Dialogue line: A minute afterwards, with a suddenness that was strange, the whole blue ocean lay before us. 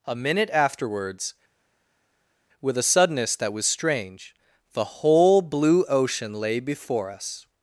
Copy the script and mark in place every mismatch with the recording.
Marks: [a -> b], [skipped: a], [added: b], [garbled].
A minute afterwards, with a suddenness that was strange, the whole blue ocean lay before us.